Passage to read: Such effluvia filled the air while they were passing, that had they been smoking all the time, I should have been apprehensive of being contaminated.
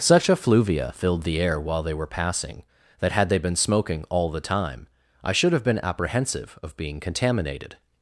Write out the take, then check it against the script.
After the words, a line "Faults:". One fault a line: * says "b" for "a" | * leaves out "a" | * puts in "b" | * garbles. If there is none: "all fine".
Such effluvia filled the air while they were passing, that had they been smoking all the time, I should have been apprehensive of being contaminated.
Faults:
all fine